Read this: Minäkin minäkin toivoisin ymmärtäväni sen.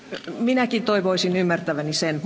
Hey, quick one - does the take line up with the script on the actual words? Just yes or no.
no